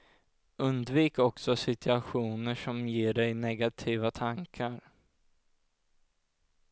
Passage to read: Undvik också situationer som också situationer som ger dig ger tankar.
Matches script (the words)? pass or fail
fail